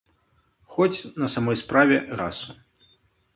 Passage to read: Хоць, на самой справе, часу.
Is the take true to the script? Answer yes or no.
yes